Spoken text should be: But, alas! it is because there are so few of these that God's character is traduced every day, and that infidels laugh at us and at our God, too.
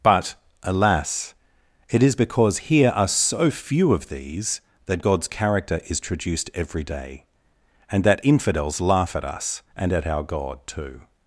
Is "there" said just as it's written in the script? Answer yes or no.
no